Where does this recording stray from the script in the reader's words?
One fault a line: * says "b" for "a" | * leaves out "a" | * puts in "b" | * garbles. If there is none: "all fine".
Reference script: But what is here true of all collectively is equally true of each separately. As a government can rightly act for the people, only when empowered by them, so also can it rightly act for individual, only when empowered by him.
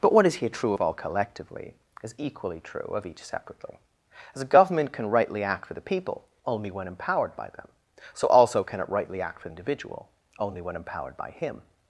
all fine